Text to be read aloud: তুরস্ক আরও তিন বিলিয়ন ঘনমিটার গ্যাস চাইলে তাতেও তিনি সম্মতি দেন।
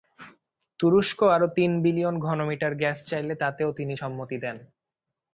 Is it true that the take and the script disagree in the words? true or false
false